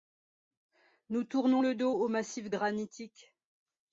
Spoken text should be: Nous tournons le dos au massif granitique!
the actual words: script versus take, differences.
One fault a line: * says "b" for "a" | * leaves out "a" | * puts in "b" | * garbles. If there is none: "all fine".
all fine